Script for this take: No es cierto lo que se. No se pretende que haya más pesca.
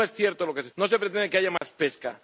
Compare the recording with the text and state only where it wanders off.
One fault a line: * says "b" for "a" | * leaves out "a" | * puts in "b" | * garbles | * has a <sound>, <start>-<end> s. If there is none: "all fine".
* has a dropout, 1.6-1.6 s